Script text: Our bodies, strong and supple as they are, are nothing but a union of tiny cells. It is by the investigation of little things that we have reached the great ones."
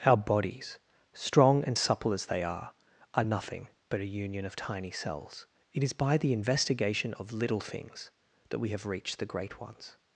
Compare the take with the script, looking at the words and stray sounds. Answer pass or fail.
pass